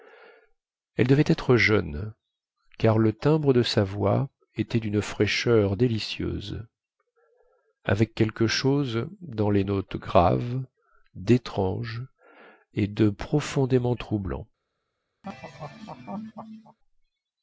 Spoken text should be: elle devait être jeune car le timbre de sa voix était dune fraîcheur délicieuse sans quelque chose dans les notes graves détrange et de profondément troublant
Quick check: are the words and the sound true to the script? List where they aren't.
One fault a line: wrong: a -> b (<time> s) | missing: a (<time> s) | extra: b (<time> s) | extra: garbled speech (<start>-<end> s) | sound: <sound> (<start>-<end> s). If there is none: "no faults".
wrong: sans -> avec (7.8 s)
sound: laugh (15.2-16.8 s)